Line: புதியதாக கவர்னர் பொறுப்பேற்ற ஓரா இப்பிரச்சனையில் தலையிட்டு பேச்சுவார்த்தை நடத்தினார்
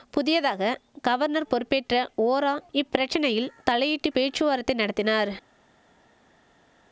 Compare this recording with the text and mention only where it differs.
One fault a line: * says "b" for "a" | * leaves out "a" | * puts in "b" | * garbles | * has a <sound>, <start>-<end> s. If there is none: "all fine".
all fine